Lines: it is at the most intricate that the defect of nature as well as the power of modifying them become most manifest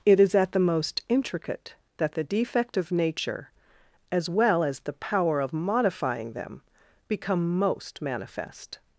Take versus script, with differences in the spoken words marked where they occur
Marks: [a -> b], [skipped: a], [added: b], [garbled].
it is at the most intricate that the defect of nature as well as the power of modifying them become most manifest